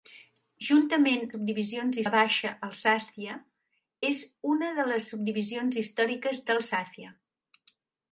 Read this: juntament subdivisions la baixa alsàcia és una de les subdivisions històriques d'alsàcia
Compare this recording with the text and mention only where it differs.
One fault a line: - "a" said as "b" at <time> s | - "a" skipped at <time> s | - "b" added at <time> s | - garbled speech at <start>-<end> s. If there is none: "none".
none